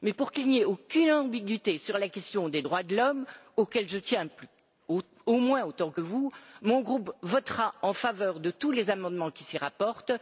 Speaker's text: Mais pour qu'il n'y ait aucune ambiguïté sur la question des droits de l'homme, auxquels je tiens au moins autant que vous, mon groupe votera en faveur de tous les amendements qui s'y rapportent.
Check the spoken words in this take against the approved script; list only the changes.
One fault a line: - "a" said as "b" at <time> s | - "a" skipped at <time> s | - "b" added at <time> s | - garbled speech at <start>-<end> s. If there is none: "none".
none